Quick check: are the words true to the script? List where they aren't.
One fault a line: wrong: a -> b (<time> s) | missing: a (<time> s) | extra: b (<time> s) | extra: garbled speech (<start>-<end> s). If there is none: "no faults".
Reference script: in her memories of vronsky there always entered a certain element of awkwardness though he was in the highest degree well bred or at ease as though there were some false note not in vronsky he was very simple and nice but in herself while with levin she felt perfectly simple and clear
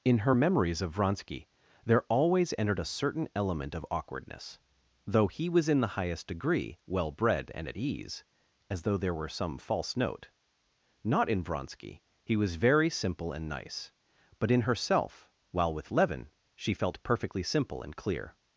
wrong: or -> and (7.5 s)